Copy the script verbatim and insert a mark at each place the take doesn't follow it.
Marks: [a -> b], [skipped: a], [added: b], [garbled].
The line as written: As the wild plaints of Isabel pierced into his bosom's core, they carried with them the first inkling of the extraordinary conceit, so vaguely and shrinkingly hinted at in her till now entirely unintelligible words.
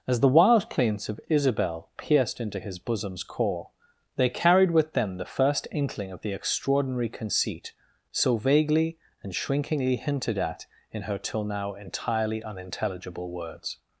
As the wild plaints of Isabel pierced into his bosom's core, they carried with them the first inkling of the extraordinary conceit, so vaguely and shrinkingly hinted at in her till now entirely unintelligible words.